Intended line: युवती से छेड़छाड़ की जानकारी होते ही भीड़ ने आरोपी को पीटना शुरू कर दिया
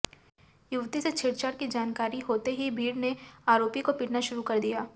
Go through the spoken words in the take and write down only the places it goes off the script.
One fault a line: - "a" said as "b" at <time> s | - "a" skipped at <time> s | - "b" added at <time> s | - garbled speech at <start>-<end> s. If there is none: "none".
none